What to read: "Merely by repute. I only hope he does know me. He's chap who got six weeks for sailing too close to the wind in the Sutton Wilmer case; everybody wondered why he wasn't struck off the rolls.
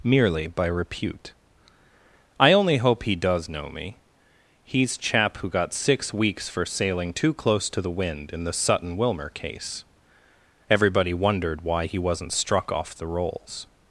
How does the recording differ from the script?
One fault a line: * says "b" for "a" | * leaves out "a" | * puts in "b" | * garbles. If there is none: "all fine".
all fine